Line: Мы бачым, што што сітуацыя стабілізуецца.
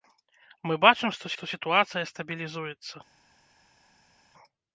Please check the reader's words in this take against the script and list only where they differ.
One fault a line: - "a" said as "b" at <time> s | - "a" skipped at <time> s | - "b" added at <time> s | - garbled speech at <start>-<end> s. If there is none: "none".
none